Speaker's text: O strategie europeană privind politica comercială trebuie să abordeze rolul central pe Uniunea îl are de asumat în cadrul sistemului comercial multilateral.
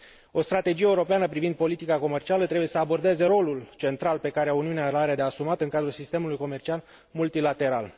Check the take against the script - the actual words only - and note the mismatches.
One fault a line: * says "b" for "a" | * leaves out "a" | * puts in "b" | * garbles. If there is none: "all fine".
* puts in "care"